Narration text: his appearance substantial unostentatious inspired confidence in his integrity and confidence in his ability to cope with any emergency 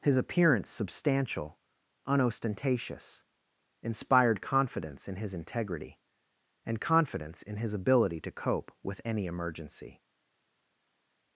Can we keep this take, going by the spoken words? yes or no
yes